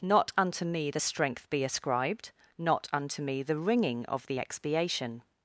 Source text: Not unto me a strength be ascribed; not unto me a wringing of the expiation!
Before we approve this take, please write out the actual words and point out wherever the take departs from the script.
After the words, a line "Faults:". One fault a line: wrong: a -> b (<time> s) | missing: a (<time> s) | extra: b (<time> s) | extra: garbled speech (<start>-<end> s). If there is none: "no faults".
Not unto me the strength be ascribed; not unto me the wringing of the expiation!
Faults:
wrong: a -> the (0.9 s)
wrong: a -> the (3.4 s)